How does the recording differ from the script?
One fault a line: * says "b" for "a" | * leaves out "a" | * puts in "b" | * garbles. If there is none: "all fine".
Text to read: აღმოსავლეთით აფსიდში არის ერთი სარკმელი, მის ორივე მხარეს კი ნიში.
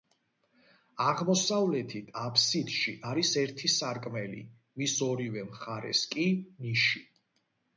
all fine